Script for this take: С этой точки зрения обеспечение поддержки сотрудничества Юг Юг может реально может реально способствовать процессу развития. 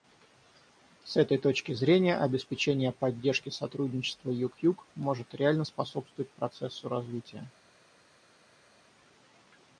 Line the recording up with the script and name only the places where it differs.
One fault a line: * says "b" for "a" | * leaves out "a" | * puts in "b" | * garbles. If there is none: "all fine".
* leaves out "может реально"